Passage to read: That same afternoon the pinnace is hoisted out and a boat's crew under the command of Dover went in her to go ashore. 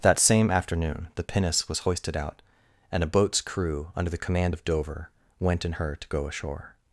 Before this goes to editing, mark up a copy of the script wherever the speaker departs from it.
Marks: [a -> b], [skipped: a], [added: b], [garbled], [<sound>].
That same afternoon the pinnace [is -> was] hoisted out and a boat's crew under the command of Dover went in her to go ashore.